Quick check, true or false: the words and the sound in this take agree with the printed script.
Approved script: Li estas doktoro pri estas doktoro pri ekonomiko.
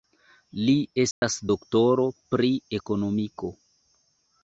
false